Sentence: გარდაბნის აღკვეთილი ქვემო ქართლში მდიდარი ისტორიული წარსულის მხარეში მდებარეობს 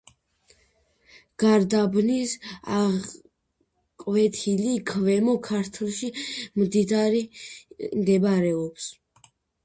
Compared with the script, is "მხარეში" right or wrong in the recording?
wrong